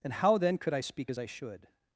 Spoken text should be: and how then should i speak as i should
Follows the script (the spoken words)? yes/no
no